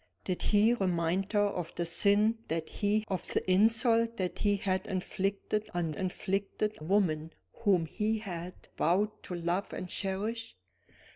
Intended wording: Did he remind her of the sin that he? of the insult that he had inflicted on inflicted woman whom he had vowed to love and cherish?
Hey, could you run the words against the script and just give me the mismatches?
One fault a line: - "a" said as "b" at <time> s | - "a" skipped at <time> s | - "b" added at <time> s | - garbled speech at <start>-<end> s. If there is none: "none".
none